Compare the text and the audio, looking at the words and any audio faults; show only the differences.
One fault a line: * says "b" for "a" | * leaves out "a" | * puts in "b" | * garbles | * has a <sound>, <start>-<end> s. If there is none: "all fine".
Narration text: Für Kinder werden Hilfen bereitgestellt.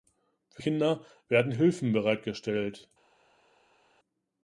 all fine